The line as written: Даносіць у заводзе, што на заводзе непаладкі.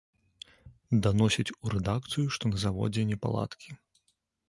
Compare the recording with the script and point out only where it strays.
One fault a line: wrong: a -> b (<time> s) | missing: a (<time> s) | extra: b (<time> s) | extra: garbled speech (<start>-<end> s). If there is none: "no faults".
wrong: заводзе -> рэдакцыю (1.8 s)